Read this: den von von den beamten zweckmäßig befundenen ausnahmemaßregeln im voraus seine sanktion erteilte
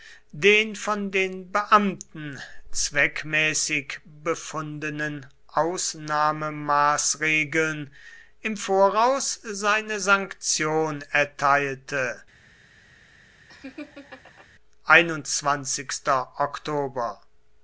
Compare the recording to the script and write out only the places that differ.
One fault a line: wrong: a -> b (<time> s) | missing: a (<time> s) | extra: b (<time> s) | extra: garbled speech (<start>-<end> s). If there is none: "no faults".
missing: von (1.1 s)